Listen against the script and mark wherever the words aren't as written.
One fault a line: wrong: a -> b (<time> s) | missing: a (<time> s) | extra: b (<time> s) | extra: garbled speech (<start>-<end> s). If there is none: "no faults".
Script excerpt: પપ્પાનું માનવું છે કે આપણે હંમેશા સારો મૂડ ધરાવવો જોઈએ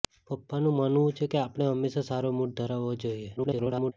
extra: garbled speech (3.4-3.9 s)